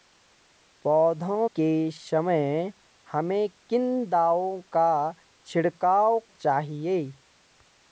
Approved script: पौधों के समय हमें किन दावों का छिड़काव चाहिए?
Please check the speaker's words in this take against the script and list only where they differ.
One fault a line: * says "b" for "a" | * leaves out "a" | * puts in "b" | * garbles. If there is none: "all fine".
all fine